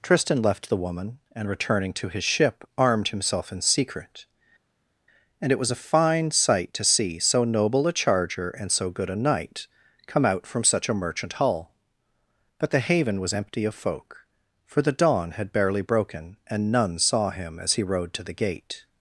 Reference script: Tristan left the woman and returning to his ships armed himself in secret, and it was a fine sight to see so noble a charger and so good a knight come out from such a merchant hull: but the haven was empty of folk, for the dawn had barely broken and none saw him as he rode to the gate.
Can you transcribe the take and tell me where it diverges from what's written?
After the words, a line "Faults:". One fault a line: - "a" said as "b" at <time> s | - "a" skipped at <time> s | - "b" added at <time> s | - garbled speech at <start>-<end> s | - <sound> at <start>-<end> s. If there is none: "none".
Tristan left the woman and returning to his ship armed himself in secret, and it was a fine sight to see so noble a charger and so good a knight come out from such a merchant hull: but the haven was empty of folk, for the dawn had barely broken and none saw him as he rode to the gate.
Faults:
- "ships" said as "ship" at 2.2 s